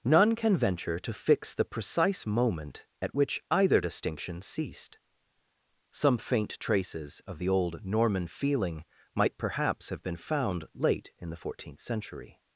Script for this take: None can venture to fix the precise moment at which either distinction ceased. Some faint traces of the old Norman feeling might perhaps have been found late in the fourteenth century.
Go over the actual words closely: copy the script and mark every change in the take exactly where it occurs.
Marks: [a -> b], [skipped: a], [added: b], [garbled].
None can venture to fix the precise moment at which either distinction ceased. Some faint traces of the old Norman feeling might perhaps have been found late in the fourteenth century.